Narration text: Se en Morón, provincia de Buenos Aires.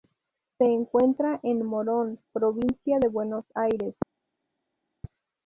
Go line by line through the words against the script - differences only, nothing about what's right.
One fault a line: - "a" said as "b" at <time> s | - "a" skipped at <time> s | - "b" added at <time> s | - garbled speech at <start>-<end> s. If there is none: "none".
- "encuentra" added at 0.6 s